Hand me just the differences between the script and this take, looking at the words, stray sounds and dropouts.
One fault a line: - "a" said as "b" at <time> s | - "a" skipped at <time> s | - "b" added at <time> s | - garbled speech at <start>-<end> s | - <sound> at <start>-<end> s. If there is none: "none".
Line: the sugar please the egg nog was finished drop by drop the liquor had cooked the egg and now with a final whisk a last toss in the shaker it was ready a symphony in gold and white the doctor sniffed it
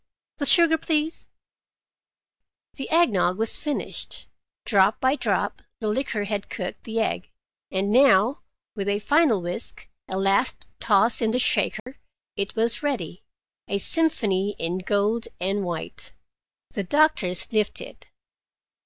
- dropout at 11.8-11.9 s